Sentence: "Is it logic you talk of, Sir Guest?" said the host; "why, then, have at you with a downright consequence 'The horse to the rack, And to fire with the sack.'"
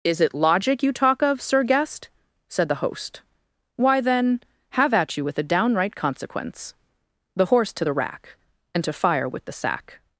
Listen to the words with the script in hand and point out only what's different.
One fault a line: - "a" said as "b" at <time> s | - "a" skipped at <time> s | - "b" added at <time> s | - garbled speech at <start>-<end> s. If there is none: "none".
none